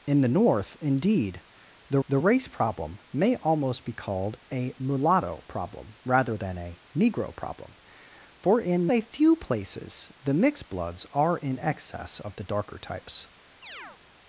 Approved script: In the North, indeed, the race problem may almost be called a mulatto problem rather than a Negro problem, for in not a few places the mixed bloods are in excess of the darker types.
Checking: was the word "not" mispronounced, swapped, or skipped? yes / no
yes